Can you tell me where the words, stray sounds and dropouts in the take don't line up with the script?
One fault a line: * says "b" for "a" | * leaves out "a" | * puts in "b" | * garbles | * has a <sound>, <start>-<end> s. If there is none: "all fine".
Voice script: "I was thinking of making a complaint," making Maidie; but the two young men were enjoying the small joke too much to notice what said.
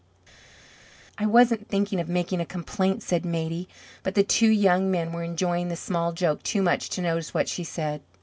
* says "wasn't" for "was"
* says "said" for "making"
* puts in "she"